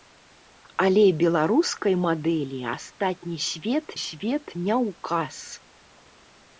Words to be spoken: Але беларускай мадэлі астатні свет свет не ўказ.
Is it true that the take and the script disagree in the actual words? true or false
false